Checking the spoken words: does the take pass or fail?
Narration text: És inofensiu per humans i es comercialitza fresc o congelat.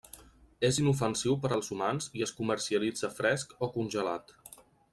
fail